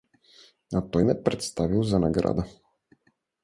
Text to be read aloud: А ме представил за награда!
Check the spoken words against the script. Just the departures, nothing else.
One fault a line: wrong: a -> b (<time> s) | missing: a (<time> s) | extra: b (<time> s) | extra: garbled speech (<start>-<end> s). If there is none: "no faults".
extra: той (0.9 s)